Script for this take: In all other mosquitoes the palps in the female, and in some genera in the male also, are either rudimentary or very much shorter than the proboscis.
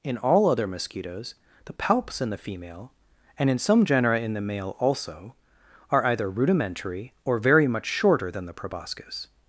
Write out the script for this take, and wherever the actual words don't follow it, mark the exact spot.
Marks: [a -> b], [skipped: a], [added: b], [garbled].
In all other mosquitoes the palps in the female, and in some genera in the male also, are either rudimentary or very much shorter than the proboscis.